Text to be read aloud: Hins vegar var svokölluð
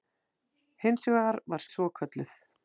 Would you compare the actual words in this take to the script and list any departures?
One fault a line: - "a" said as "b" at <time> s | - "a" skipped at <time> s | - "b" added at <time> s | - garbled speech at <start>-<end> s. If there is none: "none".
none